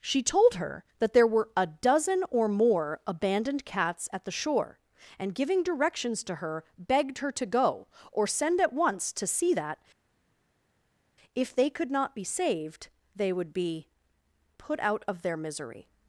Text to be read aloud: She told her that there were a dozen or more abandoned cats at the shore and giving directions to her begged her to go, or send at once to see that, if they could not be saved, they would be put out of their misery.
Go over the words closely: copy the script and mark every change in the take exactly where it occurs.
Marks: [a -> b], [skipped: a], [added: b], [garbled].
She told her that there were a dozen or more abandoned cats at the shore and giving directions to her begged her to go, or send at once to see that, if they could not be saved, they would be put out of their misery.